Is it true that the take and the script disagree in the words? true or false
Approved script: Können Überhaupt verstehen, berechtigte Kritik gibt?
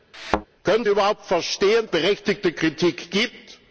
false